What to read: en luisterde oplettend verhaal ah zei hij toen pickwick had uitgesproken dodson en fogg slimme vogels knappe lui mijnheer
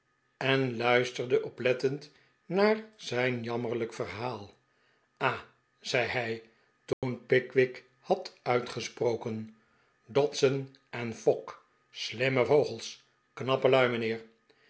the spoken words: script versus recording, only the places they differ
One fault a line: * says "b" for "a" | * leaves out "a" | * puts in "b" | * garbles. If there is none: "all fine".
* puts in "naar zijn jammerlijk"